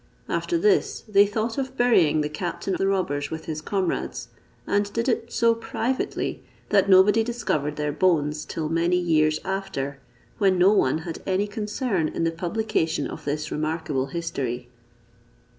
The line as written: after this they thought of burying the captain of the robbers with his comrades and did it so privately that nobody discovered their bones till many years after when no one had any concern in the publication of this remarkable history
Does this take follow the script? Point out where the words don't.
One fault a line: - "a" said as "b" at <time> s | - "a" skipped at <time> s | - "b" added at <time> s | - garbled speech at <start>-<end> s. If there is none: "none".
- "of" skipped at 2.8 s